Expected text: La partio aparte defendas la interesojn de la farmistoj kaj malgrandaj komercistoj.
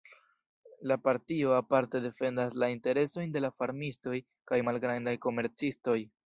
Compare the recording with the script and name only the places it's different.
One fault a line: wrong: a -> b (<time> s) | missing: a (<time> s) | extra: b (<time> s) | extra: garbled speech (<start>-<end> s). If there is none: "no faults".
no faults